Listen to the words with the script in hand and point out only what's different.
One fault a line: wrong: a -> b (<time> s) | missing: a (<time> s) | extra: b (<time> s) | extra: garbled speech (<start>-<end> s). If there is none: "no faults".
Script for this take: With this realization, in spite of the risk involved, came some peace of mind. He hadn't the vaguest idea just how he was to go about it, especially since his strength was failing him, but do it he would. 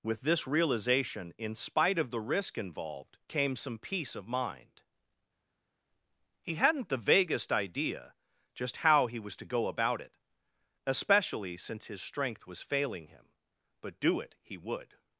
no faults